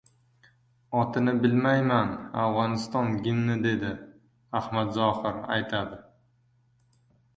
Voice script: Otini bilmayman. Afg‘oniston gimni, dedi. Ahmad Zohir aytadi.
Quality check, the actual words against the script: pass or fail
pass